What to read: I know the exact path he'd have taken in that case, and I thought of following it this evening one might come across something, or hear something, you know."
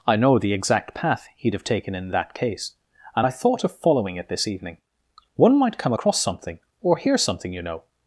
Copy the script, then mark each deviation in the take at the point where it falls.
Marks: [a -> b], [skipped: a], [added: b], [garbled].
I know the exact path he'd have taken in that case, and I thought of following it this evening one might come across something, or hear something, you know."